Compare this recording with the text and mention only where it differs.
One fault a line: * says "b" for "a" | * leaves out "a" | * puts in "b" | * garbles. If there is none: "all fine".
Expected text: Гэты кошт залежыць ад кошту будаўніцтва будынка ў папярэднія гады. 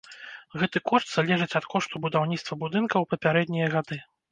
all fine